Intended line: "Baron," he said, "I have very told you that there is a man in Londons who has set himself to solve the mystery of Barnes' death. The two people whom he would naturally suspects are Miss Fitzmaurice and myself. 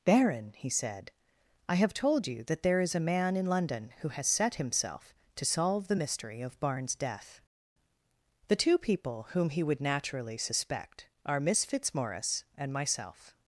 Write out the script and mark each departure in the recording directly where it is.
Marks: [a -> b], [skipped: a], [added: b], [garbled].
"Baron," he said, "I have [skipped: very] told you that there is a man in [Londons -> London] who has set himself to solve the mystery of Barnes' death. The two people whom he would naturally [suspects -> suspect] are Miss Fitzmaurice and myself.